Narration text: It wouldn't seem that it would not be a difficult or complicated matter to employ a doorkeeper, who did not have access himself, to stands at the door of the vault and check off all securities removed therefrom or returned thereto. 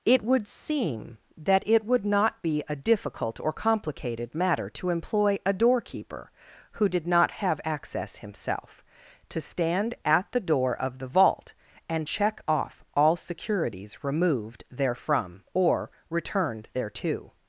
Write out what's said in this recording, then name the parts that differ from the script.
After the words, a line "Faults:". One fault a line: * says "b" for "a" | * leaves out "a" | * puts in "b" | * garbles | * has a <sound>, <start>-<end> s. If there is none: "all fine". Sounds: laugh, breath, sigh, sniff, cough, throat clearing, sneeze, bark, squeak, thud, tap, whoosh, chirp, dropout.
It would seem that it would not be a difficult or complicated matter to employ a doorkeeper, who did not have access himself, to stand at the door of the vault and check off all securities removed therefrom or returned thereto.
Faults:
* says "would" for "wouldn't"
* says "stand" for "stands"